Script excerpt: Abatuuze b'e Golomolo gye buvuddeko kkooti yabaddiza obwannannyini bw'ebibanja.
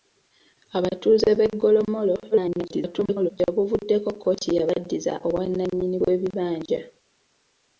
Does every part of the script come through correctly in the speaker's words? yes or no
no